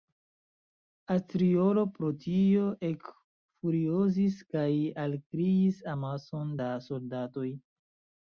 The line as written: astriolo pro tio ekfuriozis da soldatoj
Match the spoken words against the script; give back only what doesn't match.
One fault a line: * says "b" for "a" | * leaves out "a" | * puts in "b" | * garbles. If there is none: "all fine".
* puts in "kaj alkriis amason"